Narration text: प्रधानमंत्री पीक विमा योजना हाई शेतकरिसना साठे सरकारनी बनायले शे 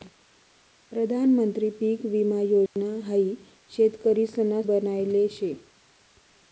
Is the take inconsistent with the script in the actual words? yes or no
yes